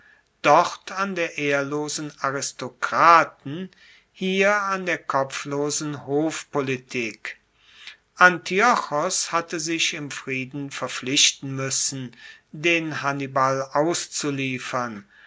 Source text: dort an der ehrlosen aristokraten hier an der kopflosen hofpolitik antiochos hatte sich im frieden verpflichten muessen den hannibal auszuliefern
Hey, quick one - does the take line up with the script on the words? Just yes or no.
yes